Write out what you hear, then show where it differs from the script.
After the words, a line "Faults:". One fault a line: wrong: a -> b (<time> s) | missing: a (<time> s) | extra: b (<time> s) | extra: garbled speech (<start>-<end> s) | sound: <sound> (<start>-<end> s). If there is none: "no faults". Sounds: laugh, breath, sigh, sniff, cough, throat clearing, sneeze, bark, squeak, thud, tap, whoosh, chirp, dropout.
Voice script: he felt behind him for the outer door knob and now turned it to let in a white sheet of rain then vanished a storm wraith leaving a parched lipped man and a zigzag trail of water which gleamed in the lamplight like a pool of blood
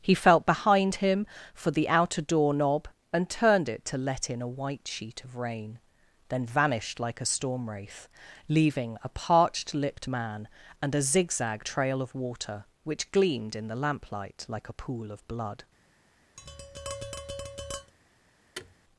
he felt behind him for the outer door knob and turned it to let in a white sheet of rain then vanished like a storm wraith leaving a parched lipped man and a zigzag trail of water which gleamed in the lamplight like a pool of blood
Faults:
missing: now (3.3 s)
extra: like (7.0 s)
sound: tap (16.4-17.9 s)
sound: thud (18.5-18.7 s)